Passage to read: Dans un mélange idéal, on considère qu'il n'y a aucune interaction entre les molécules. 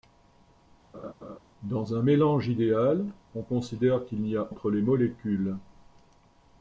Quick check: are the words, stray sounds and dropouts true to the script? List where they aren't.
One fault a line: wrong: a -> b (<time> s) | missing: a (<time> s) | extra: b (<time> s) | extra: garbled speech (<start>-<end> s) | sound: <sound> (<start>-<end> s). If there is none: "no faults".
sound: laugh (0.9-1.4 s)
missing: aucune interaction (4.5 s)